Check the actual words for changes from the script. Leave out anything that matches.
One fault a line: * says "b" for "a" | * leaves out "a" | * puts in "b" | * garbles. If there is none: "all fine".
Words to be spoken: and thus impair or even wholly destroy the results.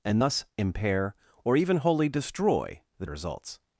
all fine